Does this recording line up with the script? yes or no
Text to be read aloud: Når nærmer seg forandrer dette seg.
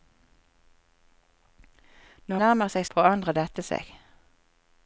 yes